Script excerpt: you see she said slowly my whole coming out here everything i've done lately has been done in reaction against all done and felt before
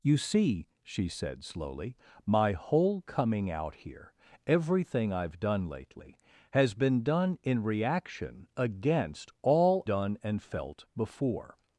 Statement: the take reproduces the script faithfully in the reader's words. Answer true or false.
true